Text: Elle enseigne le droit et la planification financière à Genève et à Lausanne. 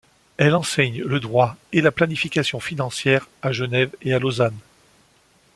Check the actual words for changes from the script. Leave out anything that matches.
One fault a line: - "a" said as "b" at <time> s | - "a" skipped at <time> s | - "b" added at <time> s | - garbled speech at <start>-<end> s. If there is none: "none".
none